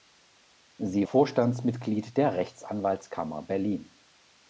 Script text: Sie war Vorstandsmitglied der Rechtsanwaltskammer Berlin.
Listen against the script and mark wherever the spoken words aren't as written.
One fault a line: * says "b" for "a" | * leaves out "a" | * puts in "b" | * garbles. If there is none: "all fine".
* leaves out "war"